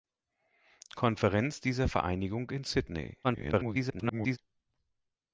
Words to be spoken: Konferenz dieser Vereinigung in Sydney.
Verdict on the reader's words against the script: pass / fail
fail